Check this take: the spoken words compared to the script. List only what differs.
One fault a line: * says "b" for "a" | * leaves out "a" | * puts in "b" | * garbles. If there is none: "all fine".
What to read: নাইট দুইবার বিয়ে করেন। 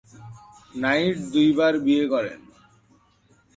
all fine